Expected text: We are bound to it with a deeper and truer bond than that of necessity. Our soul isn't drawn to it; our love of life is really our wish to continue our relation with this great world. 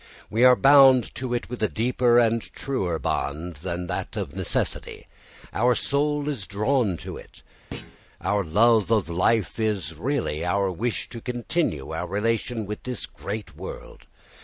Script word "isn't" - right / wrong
wrong